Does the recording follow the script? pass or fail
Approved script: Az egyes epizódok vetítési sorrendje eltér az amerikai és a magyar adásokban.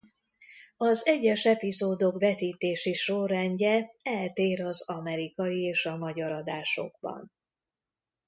pass